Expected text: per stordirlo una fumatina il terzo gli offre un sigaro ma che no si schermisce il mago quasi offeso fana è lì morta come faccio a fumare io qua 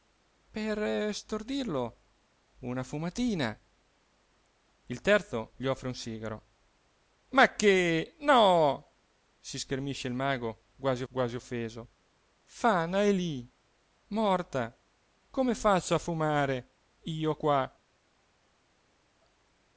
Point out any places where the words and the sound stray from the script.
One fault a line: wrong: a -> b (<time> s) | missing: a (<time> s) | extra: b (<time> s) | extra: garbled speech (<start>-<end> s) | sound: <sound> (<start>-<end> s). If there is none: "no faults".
extra: quasi (11.1 s)